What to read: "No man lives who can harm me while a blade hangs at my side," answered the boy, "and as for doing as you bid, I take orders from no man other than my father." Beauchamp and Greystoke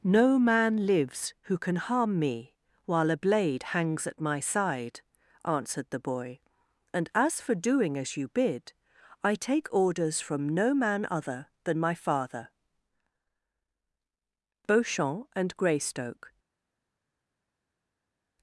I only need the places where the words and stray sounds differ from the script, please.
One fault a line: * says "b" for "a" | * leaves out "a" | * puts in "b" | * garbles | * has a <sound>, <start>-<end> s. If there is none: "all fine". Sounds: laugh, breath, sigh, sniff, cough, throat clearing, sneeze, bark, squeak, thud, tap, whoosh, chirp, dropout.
all fine